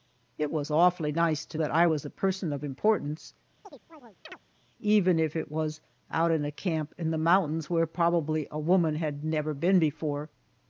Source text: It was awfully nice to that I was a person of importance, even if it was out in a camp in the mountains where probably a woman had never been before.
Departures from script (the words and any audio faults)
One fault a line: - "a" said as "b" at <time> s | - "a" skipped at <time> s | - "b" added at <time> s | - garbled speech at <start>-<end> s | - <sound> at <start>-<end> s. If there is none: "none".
- chirp at 3.6-4.4 s